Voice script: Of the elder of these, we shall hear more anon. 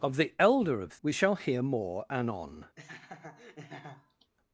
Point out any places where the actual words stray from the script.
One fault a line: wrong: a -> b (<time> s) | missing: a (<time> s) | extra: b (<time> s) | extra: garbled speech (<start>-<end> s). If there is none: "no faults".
missing: these (1.0 s)